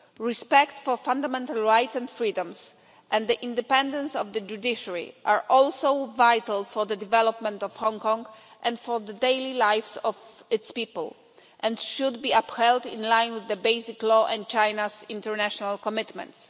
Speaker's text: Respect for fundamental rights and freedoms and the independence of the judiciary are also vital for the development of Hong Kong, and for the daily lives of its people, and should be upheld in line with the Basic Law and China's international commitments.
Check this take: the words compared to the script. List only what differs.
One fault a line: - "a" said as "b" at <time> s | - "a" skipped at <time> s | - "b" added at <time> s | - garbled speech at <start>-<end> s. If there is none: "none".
none